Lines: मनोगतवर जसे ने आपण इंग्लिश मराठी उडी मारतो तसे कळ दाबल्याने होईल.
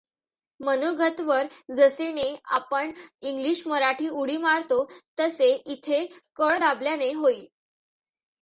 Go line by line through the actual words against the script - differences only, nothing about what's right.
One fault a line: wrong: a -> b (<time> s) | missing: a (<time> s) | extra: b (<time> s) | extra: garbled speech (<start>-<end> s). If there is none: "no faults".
extra: इथे (5.7 s)